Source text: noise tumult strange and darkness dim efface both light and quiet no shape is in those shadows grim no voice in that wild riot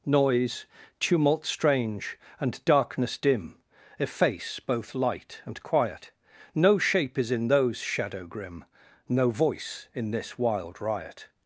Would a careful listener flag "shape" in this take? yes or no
no